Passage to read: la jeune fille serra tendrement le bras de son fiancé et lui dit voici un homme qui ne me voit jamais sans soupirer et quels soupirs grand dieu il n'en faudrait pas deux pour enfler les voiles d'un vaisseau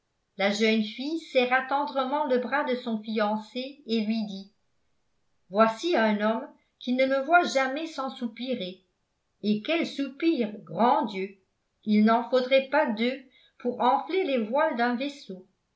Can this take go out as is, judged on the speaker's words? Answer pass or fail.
pass